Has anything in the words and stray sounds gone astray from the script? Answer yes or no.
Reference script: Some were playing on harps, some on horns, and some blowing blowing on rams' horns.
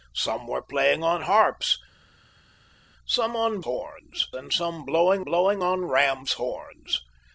no